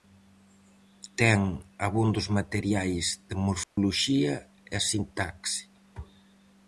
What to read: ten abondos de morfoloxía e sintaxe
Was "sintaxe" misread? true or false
false